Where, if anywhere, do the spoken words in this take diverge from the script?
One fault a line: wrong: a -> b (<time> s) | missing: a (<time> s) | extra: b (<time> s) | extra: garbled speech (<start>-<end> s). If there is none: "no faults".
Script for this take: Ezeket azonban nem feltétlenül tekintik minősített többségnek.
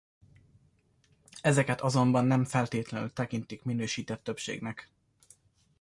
no faults